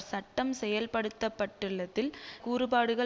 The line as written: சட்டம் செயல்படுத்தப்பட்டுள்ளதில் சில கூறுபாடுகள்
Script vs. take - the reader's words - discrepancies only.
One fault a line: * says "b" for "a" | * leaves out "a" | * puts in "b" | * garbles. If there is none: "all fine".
* leaves out "சில"